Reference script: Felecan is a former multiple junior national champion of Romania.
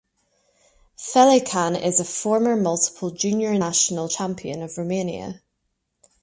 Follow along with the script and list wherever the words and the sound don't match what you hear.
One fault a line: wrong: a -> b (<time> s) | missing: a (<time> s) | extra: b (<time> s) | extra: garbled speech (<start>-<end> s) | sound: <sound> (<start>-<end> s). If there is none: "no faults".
no faults